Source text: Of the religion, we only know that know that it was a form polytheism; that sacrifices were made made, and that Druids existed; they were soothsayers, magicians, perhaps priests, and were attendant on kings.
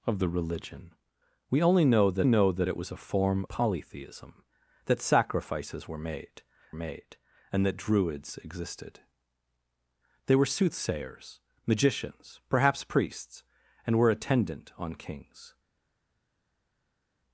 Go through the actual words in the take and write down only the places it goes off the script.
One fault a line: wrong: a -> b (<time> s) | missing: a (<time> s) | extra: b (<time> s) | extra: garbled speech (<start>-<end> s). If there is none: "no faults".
no faults